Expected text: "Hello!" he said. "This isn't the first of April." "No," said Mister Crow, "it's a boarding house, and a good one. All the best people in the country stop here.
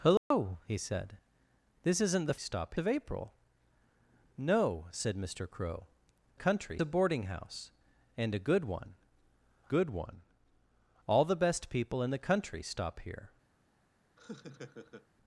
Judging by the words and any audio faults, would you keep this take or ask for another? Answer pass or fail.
fail